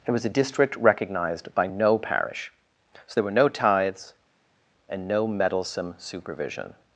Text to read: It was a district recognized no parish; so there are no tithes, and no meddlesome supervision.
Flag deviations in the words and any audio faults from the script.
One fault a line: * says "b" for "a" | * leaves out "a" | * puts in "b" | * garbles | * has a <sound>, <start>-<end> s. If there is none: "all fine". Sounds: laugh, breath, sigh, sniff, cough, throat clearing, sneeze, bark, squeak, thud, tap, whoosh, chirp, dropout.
* puts in "by"
* says "were" for "are"